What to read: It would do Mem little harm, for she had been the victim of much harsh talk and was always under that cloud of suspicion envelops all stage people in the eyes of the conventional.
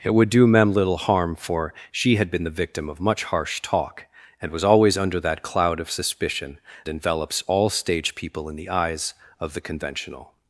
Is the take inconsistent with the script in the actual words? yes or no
no